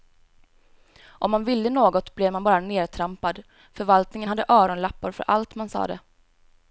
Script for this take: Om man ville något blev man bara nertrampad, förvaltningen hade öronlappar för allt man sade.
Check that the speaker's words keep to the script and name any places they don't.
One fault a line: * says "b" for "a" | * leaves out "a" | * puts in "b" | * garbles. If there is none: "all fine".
all fine